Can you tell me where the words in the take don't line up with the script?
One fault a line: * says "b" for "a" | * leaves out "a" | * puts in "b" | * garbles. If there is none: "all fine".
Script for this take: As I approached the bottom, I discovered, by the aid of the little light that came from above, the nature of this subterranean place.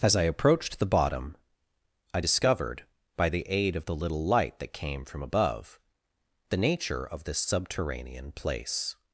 all fine